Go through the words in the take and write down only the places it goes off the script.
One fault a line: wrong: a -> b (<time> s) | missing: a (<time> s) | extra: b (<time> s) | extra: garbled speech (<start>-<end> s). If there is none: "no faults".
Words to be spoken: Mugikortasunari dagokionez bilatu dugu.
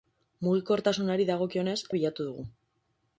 no faults